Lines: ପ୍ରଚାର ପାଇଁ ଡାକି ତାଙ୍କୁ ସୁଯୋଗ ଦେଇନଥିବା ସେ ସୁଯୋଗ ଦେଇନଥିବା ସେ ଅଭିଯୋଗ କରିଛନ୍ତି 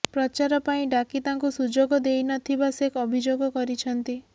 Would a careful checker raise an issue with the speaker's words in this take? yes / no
yes